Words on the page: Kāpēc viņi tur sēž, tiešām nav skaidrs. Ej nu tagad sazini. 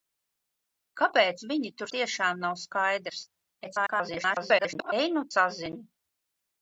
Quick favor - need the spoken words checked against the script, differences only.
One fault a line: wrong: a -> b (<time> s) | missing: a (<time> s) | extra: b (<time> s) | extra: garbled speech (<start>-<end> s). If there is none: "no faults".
missing: sēž (1.9 s)
extra: garbled speech (3.6-4.9 s)
missing: tagad (5.2 s)